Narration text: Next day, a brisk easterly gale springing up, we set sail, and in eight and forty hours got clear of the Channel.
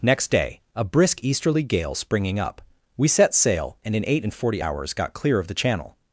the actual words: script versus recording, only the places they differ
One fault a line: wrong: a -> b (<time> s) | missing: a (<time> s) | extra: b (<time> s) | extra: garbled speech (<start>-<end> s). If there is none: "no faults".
no faults